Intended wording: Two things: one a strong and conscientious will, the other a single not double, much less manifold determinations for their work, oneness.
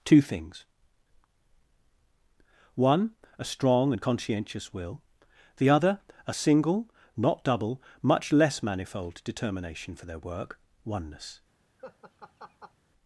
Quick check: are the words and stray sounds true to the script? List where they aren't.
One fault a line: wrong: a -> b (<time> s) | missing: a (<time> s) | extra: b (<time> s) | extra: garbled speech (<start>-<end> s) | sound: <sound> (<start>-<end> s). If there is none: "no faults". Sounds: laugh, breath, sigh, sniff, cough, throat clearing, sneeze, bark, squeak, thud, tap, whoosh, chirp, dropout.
wrong: determinations -> determination (9.2 s)
sound: laugh (11.8-12.7 s)